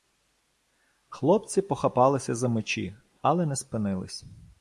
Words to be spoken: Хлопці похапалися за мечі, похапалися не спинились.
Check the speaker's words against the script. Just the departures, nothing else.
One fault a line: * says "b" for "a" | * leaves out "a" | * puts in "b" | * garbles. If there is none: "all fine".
* says "але" for "похапалися"